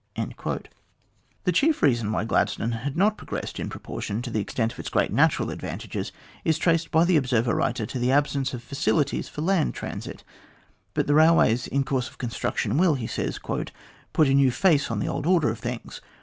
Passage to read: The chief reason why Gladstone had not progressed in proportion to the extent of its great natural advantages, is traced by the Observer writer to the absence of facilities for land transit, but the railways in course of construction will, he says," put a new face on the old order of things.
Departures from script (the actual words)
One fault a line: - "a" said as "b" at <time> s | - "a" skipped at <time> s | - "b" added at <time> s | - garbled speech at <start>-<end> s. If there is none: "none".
none